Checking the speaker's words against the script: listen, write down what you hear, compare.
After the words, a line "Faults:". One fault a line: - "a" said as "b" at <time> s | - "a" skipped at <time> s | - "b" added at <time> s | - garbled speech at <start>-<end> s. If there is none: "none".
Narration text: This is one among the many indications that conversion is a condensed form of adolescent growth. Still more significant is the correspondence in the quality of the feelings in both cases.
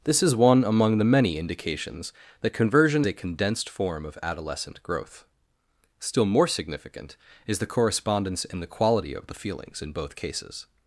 This is one among the many indications that conversion a condensed form of adolescent growth. Still more significant is the correspondence in the quality of the feelings in both cases.
Faults:
- "is" skipped at 3.0 s